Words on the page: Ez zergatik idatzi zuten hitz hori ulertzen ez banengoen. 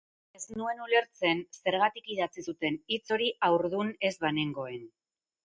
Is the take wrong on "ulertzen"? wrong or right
wrong